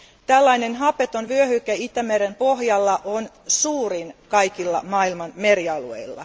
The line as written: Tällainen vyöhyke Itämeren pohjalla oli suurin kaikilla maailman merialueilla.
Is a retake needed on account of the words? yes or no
yes